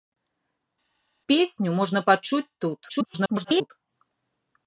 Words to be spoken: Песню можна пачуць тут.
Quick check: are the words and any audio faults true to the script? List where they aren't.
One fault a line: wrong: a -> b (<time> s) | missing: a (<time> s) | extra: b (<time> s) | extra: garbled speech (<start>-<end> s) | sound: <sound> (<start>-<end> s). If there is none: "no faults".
extra: garbled speech (2.9-3.7 s)